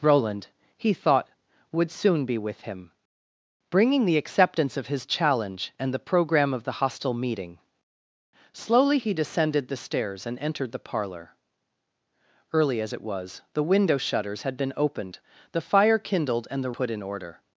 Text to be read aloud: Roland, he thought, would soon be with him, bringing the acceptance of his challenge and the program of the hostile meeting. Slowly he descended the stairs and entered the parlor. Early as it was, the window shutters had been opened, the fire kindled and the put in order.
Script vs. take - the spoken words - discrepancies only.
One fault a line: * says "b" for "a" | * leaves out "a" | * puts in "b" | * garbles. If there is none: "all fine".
all fine